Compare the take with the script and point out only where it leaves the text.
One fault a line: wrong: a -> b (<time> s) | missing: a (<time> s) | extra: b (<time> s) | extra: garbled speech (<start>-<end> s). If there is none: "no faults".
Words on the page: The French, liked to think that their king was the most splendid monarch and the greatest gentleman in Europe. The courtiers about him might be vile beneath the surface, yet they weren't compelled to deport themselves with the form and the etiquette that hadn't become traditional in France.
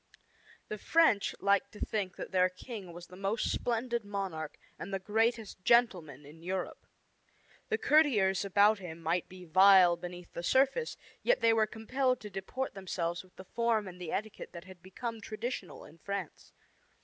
wrong: weren't -> were (11.5 s)
wrong: hadn't -> had (14.7 s)